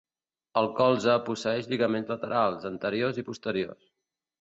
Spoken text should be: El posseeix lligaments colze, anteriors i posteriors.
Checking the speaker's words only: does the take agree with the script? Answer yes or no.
no